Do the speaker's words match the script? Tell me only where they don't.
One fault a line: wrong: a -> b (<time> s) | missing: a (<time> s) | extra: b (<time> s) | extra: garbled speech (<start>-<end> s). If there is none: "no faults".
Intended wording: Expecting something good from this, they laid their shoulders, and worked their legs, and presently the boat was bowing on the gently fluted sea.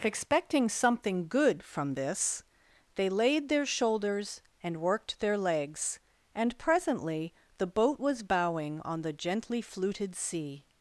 no faults